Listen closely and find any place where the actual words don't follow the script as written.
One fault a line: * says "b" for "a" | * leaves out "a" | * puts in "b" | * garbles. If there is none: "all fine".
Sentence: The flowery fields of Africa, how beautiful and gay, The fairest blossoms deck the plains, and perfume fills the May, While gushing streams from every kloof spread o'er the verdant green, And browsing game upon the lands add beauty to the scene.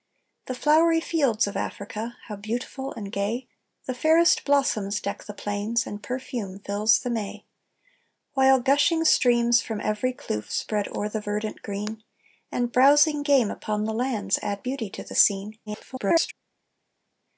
* garbles